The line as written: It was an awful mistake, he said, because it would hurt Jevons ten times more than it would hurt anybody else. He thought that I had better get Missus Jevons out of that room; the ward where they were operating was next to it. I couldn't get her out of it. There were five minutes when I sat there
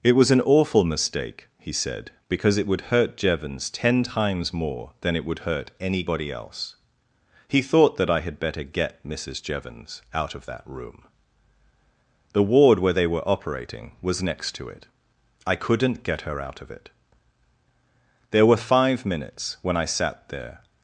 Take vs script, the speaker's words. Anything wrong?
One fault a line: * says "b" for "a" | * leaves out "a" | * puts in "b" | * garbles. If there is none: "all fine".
all fine